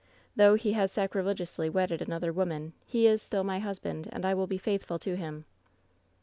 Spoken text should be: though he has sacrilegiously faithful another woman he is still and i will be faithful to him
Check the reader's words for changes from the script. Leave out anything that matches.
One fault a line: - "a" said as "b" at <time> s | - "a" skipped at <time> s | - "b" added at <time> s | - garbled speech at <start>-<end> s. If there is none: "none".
- "faithful" said as "wedded" at 1.7 s
- "my husband" added at 3.4 s